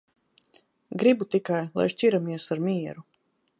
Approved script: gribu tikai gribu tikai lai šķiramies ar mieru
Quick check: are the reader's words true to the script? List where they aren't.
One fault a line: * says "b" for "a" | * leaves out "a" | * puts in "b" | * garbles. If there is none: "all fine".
* leaves out "gribu tikai"